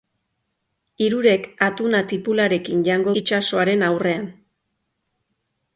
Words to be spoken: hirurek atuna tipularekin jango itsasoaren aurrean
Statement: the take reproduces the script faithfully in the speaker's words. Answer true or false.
true